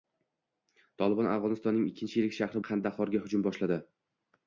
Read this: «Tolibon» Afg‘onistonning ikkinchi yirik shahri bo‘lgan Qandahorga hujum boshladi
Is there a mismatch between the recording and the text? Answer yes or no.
yes